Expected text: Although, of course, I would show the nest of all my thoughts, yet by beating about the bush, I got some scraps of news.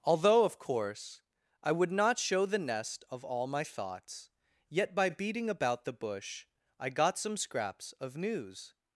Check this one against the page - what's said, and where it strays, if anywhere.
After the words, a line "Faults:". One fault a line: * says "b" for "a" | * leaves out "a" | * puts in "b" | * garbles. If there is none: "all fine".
Although, of course, I would not show the nest of all my thoughts, yet by beating about the bush, I got some scraps of news.
Faults:
* puts in "not"